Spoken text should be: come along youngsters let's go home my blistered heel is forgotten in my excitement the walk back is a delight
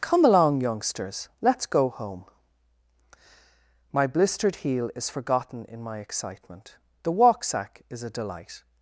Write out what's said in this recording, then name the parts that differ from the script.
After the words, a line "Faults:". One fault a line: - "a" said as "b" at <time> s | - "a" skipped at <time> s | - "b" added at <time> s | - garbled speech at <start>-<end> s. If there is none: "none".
come along youngsters let's go home my blistered heel is forgotten in my excitement the walk sack is a delight
Faults:
- "back" said as "sack" at 7.4 s